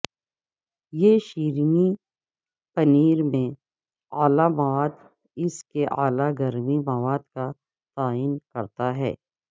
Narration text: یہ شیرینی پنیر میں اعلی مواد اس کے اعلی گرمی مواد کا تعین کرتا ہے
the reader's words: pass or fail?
pass